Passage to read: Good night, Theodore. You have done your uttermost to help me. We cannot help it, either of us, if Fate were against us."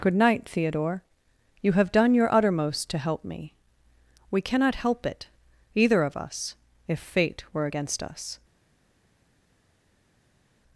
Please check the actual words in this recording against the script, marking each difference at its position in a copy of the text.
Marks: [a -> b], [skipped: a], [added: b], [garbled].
Good night, Theodore. You have done your uttermost to help me. We cannot help it, either of us, if Fate were against us."